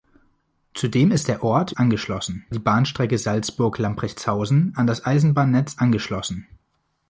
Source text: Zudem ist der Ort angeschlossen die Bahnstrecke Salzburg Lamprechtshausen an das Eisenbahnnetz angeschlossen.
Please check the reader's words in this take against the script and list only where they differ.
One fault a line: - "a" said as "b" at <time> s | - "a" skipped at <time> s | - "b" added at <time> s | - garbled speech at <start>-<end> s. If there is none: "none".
none